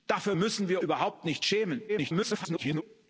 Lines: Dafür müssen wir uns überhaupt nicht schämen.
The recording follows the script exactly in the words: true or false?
false